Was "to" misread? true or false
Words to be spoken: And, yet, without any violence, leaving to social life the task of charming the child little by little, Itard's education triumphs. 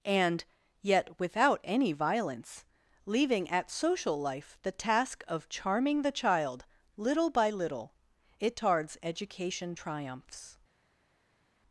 true